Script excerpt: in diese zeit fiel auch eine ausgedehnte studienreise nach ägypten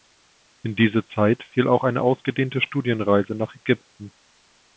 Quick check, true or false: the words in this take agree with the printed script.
true